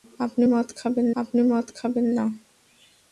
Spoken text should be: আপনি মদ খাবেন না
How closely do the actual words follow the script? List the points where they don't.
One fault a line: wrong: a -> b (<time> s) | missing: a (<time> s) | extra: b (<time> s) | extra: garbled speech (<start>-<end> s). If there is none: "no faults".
extra: আপনি মদ খাবেন (1.2 s)